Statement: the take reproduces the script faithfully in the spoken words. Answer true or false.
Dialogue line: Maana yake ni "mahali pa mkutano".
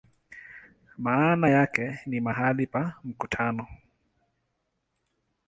true